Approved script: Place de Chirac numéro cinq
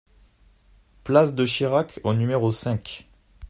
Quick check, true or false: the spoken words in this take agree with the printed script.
false